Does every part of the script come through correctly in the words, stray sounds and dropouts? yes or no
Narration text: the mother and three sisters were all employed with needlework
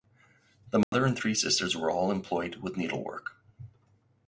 no